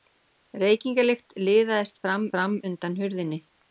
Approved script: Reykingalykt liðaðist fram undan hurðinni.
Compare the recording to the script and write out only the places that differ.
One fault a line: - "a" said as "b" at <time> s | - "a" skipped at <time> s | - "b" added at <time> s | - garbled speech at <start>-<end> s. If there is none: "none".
- "fram" added at 2.4 s